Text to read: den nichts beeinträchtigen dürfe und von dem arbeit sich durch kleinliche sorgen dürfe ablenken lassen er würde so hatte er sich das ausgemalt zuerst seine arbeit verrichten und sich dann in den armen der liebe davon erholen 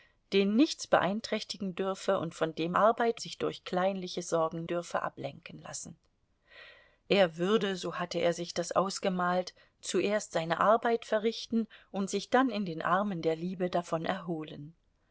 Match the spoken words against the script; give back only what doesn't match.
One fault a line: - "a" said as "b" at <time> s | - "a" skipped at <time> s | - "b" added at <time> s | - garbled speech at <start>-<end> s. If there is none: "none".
none